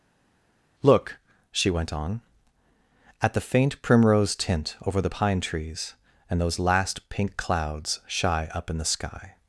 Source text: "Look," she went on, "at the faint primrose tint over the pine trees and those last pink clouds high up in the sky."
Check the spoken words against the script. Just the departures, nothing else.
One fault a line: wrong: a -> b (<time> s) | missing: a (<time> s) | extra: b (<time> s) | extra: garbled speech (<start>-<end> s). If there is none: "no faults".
wrong: high -> shy (8.1 s)